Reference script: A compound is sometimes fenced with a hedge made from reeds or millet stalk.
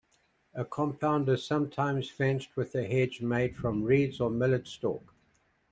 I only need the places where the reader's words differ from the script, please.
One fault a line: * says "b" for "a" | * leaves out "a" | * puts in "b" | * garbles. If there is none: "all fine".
all fine